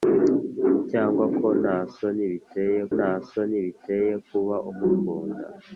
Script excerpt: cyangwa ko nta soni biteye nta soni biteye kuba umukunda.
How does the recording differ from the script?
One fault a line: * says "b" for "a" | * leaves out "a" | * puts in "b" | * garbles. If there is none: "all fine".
all fine